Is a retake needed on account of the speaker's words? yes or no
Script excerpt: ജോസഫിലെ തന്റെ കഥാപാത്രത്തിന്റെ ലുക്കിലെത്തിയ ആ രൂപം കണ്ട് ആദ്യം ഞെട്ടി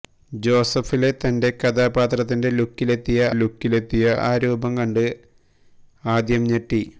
yes